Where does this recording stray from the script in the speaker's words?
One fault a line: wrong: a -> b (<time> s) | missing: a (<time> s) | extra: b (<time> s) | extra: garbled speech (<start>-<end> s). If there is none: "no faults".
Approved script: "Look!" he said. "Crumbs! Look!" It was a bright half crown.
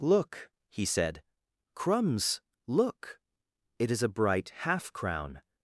wrong: was -> is (3.9 s)